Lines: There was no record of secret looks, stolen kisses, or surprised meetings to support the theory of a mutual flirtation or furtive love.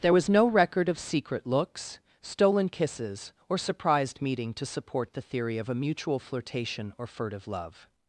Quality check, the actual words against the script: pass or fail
fail